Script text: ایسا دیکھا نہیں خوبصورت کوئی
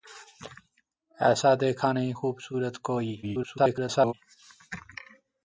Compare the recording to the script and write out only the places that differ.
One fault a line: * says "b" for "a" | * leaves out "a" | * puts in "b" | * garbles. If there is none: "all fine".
* garbles